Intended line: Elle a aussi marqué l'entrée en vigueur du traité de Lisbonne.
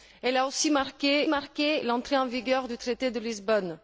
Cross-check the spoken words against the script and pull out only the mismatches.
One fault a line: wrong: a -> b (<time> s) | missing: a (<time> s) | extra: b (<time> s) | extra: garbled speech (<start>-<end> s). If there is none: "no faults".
extra: marqué (1.3 s)